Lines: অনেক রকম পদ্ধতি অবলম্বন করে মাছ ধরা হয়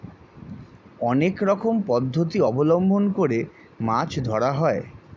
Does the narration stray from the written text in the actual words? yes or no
no